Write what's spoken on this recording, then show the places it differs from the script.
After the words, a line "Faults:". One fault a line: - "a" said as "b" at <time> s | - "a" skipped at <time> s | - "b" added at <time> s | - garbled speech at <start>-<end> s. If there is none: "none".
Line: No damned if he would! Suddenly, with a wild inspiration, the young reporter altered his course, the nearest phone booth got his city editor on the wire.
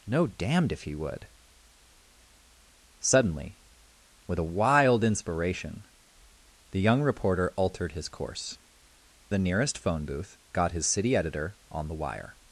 No damned if he would! Suddenly, with a wild inspiration, the young reporter altered his course, the nearest phone booth got his city editor on the wire.
Faults:
none